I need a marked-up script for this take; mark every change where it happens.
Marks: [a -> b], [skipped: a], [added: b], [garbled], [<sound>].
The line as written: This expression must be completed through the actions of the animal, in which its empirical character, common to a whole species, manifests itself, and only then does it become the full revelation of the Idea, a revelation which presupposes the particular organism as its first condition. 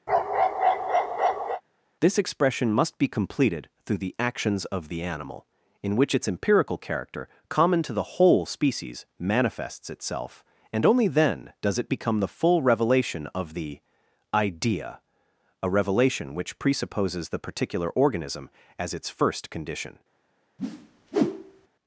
[bark] This expression must be completed through the actions of the animal, in which its empirical character, common to [a -> the] whole species, manifests itself, and only then does it become the full revelation of the Idea, a revelation which presupposes the particular organism as its first condition. [whoosh]